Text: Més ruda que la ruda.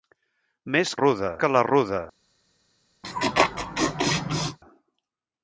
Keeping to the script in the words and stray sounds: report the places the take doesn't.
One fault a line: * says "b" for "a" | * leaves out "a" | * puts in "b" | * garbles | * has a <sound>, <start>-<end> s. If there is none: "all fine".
* has a laugh, 3.0-4.6 s